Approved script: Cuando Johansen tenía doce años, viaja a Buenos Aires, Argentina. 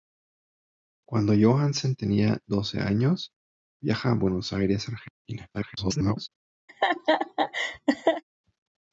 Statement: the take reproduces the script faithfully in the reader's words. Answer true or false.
false